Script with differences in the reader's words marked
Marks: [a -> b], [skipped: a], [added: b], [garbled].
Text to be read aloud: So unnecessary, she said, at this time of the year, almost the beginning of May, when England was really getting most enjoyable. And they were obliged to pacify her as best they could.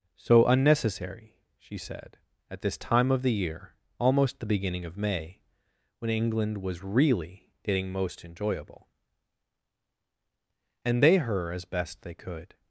So unnecessary, she said, at this time of the year, almost the beginning of May, when England was really getting most enjoyable. And they [skipped: were obliged to pacify] her as best they could.